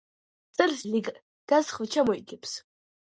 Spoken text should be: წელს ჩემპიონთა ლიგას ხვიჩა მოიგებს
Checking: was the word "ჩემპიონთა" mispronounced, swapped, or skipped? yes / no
yes